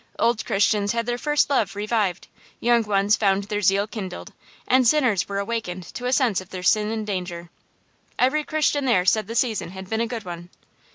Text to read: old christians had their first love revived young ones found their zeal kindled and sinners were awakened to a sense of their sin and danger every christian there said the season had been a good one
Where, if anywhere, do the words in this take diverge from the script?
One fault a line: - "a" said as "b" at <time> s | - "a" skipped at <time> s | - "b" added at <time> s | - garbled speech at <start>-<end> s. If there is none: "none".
none